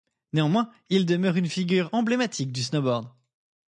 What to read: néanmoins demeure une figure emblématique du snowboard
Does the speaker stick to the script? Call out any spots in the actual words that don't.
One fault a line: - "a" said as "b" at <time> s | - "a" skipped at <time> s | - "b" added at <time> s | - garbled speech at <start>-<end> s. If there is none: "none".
- "il" added at 0.9 s